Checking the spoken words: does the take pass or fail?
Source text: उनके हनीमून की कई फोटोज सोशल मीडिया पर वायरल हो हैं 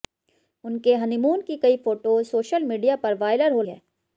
pass